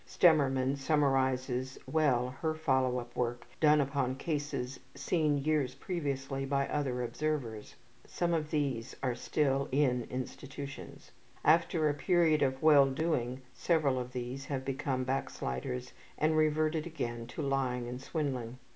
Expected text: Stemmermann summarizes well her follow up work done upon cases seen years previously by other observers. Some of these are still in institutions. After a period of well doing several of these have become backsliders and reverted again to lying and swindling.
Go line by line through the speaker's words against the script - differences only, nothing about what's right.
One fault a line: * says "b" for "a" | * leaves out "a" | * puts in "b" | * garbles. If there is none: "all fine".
all fine